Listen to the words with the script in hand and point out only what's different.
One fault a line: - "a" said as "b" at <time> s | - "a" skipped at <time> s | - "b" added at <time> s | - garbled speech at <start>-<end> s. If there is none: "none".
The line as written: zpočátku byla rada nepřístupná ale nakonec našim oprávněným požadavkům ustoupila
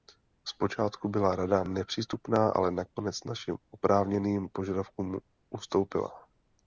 none